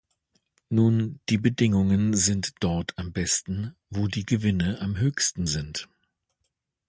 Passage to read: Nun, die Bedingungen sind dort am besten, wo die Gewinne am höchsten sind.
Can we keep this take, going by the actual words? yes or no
yes